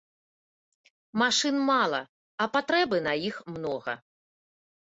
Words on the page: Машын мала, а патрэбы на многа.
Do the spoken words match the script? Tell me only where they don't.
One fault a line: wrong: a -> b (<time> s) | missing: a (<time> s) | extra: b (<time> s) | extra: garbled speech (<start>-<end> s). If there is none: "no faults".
extra: іх (3.3 s)